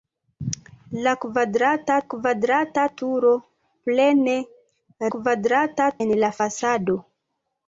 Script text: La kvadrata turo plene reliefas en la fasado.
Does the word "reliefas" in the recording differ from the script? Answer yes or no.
yes